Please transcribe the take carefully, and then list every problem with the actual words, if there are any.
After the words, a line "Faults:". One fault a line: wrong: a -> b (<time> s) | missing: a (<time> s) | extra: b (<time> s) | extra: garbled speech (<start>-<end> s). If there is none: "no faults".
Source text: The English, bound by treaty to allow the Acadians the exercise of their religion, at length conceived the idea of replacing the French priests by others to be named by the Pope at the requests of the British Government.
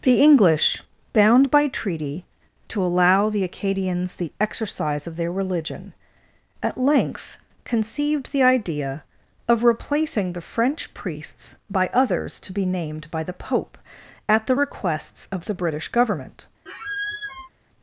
The English, bound by treaty to allow the Acadians the exercise of their religion, at length conceived the idea of replacing the French priests by others to be named by the Pope at the requests of the British Government.
Faults:
no faults